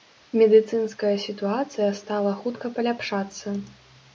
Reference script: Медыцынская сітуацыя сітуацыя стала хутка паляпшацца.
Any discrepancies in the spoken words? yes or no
yes